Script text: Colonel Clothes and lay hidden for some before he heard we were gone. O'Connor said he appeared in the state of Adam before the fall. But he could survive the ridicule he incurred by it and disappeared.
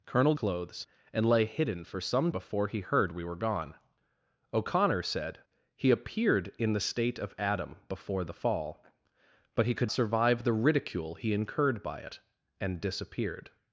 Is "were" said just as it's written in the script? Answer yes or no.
yes